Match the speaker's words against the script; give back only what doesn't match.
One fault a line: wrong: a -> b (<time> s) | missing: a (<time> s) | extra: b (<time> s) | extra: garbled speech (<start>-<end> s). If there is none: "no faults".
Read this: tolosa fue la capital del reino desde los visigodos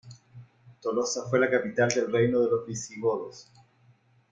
wrong: desde -> de (2.4 s)